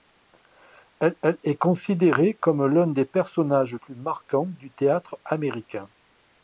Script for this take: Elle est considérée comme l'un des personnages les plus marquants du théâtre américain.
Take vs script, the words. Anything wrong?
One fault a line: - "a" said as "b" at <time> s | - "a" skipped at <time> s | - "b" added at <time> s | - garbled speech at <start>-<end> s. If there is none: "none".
- "elle" added at 1.2 s
- "les" skipped at 3.7 s